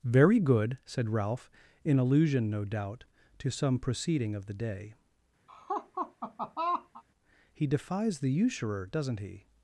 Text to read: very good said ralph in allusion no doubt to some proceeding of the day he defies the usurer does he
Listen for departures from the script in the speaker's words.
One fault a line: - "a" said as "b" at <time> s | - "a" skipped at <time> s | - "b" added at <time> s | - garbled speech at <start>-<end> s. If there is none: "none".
- "does" said as "doesn't" at 8.9 s